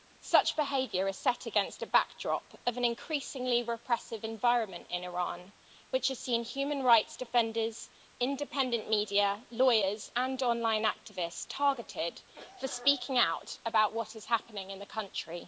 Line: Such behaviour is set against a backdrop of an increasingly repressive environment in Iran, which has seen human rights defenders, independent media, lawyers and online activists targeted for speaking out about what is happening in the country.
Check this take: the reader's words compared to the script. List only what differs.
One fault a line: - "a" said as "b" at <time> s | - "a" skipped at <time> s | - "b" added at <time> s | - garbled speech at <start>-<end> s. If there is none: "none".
none